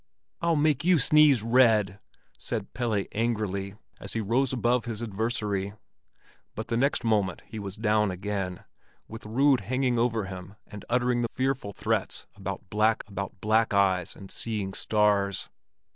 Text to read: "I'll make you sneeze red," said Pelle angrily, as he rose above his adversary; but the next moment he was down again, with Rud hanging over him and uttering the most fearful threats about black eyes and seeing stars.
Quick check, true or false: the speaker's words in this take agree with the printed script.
false